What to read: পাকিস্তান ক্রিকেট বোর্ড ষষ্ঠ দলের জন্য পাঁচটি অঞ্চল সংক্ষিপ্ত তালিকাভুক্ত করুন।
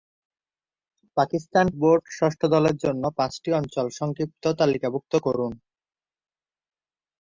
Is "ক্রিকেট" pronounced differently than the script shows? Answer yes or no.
yes